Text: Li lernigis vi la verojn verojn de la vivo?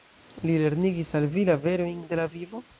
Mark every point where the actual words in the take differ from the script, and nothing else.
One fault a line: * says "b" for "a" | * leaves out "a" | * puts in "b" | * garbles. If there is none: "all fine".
* puts in "al"
* leaves out "verojn"